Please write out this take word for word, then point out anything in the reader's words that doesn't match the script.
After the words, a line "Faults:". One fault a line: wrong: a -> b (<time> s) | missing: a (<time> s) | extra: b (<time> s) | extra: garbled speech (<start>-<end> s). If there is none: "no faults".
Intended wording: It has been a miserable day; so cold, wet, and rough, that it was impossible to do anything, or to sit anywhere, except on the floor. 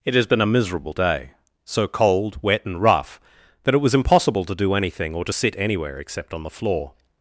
It has been a miserable day; so cold, wet, and rough, that it was impossible to do anything, or to sit anywhere, except on the floor.
Faults:
no faults